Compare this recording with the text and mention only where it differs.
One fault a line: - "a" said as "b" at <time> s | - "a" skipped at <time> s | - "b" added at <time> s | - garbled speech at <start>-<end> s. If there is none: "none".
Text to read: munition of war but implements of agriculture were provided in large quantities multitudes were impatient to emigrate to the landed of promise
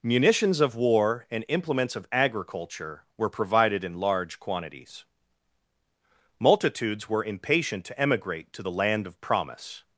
- "munition" said as "munitions" at 0.0 s
- "but" said as "and" at 1.3 s
- "landed" said as "land" at 8.7 s